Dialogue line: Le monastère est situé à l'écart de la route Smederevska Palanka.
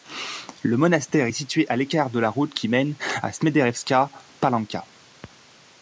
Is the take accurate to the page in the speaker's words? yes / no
no